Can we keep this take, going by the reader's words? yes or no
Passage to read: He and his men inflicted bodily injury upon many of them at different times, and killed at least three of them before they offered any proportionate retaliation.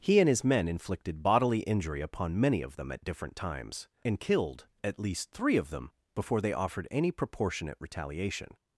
yes